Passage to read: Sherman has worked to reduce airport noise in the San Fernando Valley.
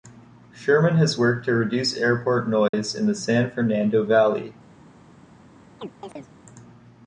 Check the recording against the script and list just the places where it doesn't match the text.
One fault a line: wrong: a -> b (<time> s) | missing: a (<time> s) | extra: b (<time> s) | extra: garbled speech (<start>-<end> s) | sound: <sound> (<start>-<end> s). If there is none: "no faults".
sound: dropout (2.7-2.7 s)
sound: chirp (5.8-6.3 s)